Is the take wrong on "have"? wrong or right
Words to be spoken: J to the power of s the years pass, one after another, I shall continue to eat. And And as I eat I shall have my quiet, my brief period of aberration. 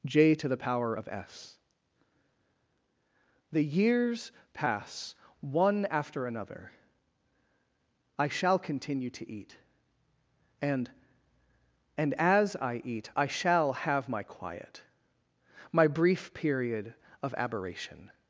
right